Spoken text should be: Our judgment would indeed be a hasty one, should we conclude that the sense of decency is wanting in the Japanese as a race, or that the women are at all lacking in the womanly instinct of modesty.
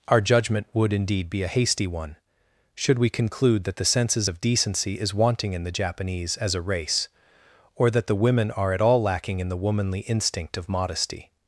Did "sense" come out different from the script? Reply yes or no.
yes